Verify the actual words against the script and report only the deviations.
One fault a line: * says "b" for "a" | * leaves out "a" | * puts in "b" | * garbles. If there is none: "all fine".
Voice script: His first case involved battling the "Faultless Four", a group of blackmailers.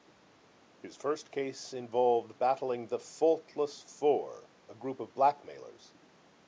all fine